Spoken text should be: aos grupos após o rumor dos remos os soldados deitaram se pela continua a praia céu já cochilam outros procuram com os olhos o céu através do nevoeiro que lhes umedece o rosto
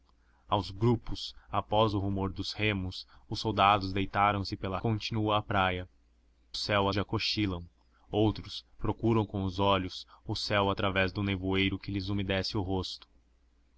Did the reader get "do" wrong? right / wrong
right